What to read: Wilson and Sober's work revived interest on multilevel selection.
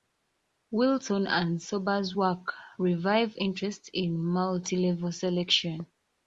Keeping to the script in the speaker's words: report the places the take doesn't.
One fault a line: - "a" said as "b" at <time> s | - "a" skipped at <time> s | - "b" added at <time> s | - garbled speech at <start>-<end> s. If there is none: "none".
- "on" said as "in" at 3.9 s